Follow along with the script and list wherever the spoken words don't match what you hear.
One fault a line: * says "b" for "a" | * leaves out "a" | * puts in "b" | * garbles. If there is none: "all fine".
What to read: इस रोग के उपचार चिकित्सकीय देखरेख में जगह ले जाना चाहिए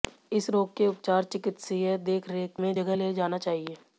all fine